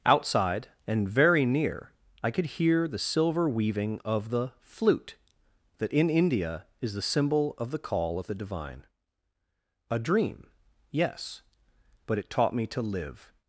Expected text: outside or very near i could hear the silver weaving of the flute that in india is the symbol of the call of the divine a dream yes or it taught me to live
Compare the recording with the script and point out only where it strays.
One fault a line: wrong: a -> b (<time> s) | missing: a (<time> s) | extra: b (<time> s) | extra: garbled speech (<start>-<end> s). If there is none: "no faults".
wrong: or -> and (0.9 s)
wrong: or -> but (12.1 s)